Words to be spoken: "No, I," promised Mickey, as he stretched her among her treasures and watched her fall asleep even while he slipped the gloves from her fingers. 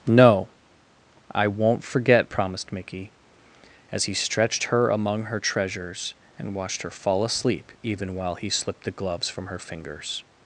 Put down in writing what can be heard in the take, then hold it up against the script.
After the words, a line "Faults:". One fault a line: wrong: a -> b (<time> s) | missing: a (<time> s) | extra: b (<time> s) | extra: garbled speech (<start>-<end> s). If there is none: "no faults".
"No, I won't forget," promised Mickey, as he stretched her among her treasures and watched her fall asleep even while he slipped the gloves from her fingers.
Faults:
extra: won't forget (1.5 s)